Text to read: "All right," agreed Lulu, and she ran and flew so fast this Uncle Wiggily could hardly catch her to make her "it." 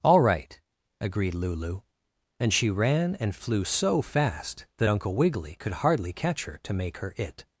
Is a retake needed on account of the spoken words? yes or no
yes